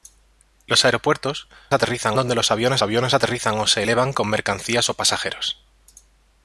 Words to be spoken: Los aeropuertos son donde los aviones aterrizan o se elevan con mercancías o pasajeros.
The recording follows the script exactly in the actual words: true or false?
false